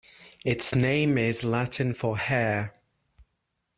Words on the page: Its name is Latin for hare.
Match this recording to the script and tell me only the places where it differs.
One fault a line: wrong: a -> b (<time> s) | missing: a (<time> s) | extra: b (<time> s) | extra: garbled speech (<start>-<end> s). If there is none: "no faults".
no faults